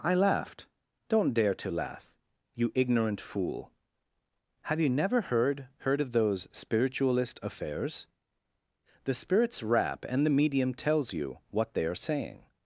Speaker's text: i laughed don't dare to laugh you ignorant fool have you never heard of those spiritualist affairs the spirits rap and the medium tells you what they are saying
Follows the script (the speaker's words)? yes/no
no